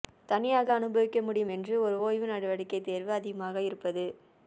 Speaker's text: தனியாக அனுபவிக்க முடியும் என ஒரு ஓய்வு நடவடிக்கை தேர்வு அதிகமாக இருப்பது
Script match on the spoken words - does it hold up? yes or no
no